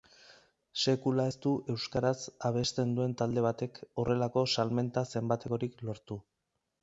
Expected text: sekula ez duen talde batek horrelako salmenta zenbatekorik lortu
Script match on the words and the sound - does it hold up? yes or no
no